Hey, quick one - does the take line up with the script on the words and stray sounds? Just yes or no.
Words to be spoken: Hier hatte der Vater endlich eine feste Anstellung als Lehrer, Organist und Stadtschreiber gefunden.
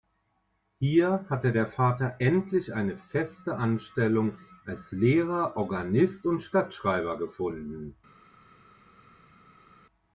yes